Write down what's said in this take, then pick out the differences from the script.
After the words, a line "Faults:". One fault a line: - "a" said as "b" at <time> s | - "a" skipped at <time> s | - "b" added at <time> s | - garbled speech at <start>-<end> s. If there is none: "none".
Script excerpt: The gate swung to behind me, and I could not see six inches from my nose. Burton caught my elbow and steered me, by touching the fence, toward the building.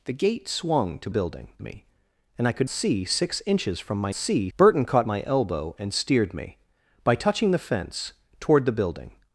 The gate swung to building me, and I could see six inches from my see. Burton caught my elbow and steered me, by touching the fence, toward the building.
Faults:
- "behind" said as "building" at 1.1 s
- "not" skipped at 2.7 s
- "nose" said as "see" at 4.1 s